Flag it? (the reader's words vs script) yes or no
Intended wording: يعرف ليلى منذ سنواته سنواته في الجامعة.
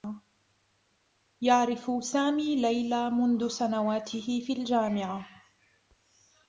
yes